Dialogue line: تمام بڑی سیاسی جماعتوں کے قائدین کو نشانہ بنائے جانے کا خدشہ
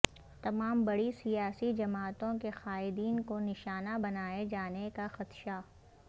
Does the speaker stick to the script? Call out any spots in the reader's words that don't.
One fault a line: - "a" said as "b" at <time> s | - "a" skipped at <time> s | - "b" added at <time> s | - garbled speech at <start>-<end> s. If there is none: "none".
none